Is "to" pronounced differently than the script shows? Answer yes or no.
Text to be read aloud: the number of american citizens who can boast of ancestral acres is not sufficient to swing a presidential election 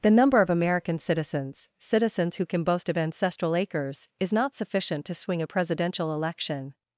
no